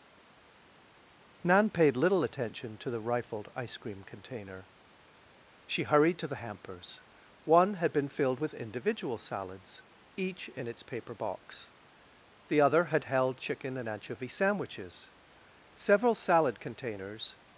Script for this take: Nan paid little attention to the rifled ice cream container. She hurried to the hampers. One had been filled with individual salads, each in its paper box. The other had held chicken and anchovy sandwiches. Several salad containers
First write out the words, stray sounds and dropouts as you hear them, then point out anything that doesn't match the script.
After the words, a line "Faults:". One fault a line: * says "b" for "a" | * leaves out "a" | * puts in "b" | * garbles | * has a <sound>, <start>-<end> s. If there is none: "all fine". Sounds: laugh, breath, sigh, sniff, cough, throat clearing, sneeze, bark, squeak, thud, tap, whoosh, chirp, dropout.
Nan paid little attention to the rifled ice cream container. She hurried to the hampers. One had been filled with individual salads, each in its paper box. The other had held chicken and anchovy sandwiches. Several salad containers
Faults:
all fine